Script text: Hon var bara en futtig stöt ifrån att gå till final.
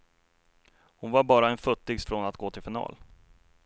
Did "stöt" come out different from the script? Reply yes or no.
yes